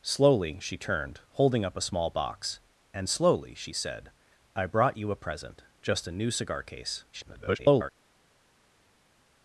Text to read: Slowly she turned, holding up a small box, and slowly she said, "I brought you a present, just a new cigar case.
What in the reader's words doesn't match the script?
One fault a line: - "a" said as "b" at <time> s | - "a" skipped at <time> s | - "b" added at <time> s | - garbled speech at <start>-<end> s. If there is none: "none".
- garbled speech at 7.1-7.9 s